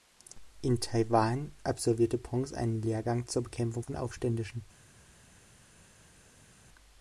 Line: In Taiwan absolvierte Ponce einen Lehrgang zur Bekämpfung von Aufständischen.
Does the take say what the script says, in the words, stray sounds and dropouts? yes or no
yes